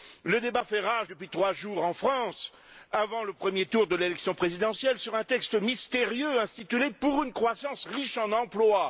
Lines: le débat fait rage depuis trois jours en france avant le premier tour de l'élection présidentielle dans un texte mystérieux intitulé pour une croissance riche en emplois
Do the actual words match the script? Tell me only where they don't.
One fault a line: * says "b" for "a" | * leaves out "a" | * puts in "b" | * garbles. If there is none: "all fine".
* says "sur" for "dans"